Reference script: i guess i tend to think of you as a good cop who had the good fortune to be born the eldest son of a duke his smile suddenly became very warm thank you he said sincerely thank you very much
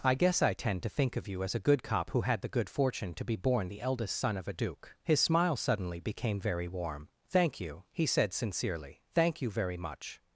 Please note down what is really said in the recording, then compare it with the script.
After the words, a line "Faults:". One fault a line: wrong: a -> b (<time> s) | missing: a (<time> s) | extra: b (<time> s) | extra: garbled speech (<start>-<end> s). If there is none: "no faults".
i guess i tend to think of you as a good cop who had the good fortune to be born the eldest son of a duke his smile suddenly became very warm thank you he said sincerely thank you very much
Faults:
no faults